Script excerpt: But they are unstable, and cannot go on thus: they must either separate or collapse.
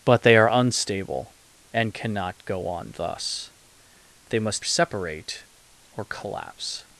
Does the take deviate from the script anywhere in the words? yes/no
yes